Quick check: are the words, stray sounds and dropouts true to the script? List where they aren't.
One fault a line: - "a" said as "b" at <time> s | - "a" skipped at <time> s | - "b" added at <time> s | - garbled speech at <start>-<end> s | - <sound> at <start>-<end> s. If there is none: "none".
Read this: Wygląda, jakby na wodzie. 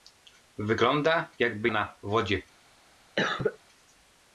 - cough at 3.2-3.6 s